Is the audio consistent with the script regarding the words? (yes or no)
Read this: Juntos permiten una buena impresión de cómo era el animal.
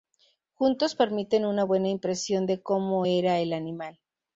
yes